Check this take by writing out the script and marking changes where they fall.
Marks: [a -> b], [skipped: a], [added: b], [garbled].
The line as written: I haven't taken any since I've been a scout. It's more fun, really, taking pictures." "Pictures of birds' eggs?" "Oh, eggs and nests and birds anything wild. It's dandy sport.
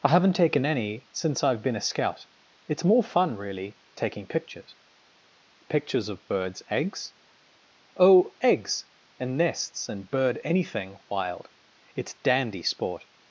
I haven't taken any since I've been a scout. It's more fun, really, taking pictures." "Pictures of birds' eggs?" "Oh, eggs and nests and [birds -> bird] anything wild. It's dandy sport.